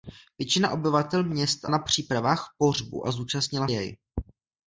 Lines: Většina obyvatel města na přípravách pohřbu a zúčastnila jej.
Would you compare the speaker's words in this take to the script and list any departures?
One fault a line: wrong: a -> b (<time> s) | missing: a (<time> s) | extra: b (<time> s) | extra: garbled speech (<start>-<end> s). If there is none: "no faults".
no faults